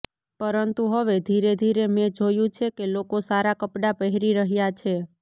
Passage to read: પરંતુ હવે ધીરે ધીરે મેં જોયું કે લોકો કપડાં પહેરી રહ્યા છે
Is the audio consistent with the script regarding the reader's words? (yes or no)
no